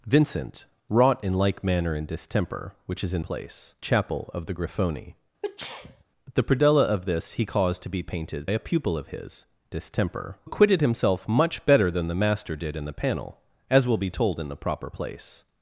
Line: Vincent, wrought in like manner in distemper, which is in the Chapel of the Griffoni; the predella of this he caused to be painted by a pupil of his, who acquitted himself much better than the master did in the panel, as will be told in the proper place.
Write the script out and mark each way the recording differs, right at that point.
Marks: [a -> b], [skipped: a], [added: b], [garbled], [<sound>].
Vincent, wrought in like manner in distemper, which is in [the -> place] Chapel of the Griffoni; [sneeze] the predella of this he caused to be painted [skipped: by] a pupil of his, [who -> distemper] acquitted himself much better than the master did in the panel, as will be told in the proper place.